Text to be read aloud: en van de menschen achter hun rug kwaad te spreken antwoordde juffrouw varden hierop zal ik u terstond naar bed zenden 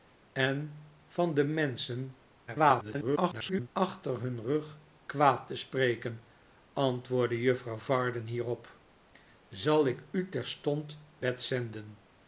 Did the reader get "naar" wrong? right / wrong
wrong